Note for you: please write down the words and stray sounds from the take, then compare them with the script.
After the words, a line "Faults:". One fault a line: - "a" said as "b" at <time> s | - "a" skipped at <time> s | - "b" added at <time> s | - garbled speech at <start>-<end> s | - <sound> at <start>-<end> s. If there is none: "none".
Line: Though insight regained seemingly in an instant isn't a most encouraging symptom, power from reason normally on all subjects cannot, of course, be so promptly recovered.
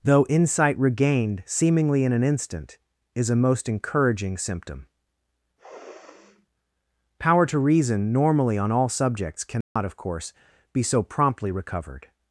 Though insight regained seemingly in an instant is a most encouraging symptom, power to reason normally on all subjects cannot, of course, be so promptly recovered.
Faults:
- "isn't" said as "is" at 3.1 s
- sniff at 5.6-6.5 s
- "from" said as "to" at 7.5 s
- dropout at 9.6-9.8 s